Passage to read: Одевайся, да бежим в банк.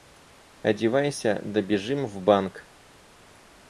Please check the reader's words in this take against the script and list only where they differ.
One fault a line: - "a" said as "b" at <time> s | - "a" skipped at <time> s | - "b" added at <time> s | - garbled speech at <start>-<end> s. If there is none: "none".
none